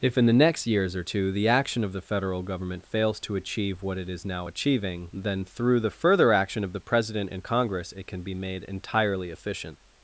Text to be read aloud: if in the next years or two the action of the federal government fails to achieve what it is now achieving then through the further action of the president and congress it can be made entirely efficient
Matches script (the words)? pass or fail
pass